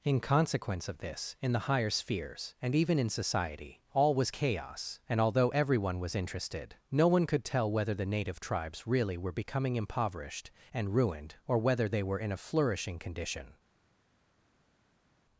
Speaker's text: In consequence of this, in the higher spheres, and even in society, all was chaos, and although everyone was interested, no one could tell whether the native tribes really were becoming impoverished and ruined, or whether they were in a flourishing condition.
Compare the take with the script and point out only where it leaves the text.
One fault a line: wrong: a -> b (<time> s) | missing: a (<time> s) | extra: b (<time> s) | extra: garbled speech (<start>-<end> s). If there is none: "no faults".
no faults